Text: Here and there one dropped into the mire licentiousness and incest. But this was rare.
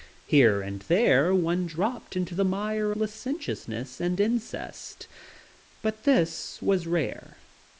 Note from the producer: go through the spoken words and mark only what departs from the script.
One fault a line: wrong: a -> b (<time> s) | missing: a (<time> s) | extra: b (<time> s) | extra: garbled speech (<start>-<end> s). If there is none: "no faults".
no faults